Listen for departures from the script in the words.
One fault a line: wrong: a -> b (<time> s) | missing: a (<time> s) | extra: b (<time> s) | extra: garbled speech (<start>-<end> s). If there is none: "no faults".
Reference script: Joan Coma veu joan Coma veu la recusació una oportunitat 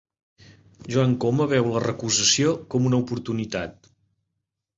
missing: joan Coma veu (1.7 s)
extra: com (2.8 s)